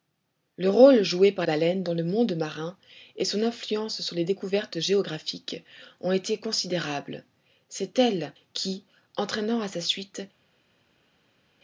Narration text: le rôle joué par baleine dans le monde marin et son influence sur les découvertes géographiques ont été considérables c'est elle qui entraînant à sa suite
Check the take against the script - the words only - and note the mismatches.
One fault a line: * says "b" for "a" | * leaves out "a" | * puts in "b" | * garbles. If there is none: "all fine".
all fine